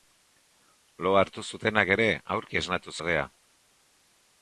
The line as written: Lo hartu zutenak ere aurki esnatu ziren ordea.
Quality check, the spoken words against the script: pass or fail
fail